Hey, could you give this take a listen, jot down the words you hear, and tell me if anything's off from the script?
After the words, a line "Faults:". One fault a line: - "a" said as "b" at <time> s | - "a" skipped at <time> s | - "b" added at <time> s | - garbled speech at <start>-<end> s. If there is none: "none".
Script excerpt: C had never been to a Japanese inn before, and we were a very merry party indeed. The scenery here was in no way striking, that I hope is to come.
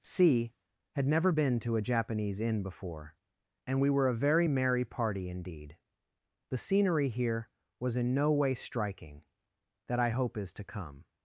C had never been to a Japanese inn before, and we were a very merry party indeed. The scenery here was in no way striking, that I hope is to come.
Faults:
none